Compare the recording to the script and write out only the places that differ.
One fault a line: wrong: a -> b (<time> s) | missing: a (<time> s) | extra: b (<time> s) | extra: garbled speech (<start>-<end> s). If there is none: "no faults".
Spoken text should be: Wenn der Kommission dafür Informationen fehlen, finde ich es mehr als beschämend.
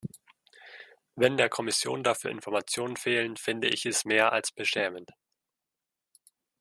no faults